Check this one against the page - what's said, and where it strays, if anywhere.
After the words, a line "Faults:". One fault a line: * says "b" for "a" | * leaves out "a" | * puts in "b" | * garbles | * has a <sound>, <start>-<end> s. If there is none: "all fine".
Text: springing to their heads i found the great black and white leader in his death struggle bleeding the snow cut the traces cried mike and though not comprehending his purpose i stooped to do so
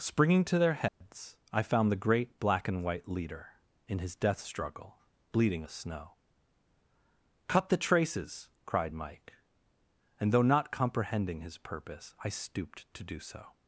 springing to their heads i found the great black and white leader in his death struggle bleeding the snow cut the traces cried mike and though not comprehending his purpose i stooped to do so
Faults:
* has a dropout, 0.9-1.0 s